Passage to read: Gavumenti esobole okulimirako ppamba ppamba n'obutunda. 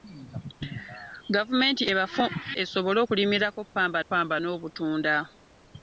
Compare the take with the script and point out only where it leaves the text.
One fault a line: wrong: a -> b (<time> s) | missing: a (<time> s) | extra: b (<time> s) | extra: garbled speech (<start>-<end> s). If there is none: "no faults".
no faults